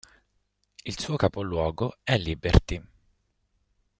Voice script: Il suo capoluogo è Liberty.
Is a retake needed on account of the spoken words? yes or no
no